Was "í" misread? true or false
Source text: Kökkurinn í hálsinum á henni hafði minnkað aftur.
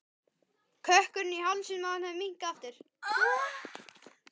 false